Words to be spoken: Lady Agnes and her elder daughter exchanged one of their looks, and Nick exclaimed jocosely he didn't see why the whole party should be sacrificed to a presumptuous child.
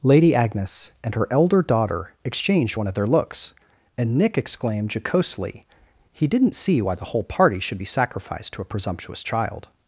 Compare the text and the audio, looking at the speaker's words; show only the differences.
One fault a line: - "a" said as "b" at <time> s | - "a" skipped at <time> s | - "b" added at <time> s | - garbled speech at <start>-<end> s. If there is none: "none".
none